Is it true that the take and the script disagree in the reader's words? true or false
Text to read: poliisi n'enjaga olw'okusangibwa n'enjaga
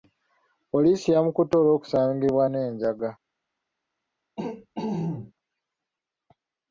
true